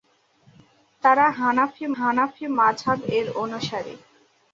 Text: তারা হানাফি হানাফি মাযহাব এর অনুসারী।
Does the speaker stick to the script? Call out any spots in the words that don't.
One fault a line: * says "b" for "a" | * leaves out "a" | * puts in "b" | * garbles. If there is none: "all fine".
all fine